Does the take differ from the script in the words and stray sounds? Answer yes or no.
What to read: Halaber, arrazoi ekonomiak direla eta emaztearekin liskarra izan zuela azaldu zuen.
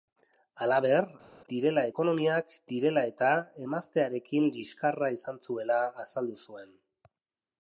yes